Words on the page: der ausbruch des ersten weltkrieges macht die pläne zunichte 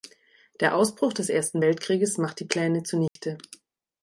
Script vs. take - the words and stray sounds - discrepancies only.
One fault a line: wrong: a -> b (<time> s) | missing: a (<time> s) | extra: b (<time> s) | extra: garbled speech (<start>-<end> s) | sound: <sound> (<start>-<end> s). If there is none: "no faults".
sound: dropout (3.1-3.2 s)